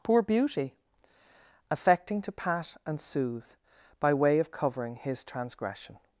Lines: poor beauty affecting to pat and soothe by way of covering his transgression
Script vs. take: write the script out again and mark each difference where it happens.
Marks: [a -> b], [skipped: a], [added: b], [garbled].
poor beauty affecting to pat and soothe by way of covering his transgression